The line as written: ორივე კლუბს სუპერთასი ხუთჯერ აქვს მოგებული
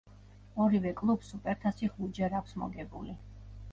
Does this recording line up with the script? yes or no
yes